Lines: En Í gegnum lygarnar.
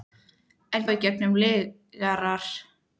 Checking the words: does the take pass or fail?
pass